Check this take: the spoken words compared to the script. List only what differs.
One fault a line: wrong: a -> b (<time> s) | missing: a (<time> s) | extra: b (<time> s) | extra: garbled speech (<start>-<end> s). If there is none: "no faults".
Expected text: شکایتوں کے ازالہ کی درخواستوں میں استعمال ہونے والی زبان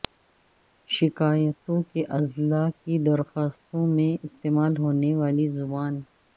no faults